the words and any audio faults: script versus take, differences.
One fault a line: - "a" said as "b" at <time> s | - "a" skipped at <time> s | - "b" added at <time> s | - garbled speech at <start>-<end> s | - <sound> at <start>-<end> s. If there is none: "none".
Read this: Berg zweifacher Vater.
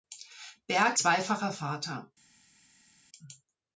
none